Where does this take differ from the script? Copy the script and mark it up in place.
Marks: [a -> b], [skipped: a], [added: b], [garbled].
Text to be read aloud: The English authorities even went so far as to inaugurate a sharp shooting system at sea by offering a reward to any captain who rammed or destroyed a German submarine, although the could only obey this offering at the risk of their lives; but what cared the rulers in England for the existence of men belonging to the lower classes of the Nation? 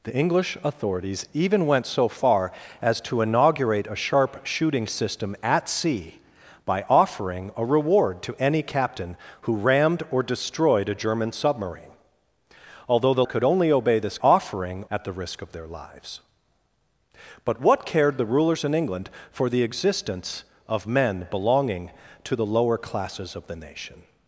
The English authorities even went so far as to inaugurate a sharp shooting system at sea by offering a reward to any captain who rammed or destroyed a German submarine, although the could only obey this offering at the risk of their lives; but what cared the rulers in England for the existence of men belonging to the lower classes of the Nation?